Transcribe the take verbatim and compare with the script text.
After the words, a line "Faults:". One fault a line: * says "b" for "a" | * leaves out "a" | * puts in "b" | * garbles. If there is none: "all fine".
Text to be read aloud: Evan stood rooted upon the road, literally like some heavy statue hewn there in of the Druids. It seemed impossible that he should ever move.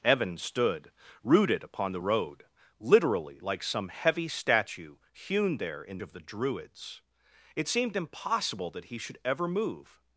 Evan stood rooted upon the road, literally like some heavy statue hewn there in of the Druids. It seemed impossible that he should ever move.
Faults:
all fine